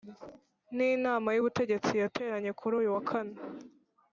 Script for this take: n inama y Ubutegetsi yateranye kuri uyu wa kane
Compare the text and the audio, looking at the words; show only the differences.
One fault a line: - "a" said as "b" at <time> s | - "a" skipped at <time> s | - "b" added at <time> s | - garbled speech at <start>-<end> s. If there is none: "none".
none